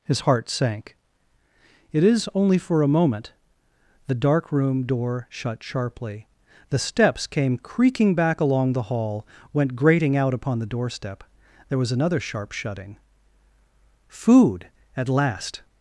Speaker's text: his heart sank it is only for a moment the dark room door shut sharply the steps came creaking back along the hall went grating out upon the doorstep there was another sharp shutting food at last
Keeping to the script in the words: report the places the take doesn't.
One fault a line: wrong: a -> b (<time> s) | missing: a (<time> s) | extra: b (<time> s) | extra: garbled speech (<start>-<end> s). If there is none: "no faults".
no faults